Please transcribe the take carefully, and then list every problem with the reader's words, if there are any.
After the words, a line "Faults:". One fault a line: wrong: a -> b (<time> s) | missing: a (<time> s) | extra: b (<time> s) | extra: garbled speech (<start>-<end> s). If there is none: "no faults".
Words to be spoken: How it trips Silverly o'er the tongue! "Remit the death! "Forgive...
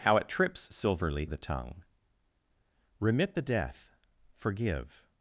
How it trips Silverly the tongue! "Remit the death! "Forgive...
Faults:
missing: o'er (1.3 s)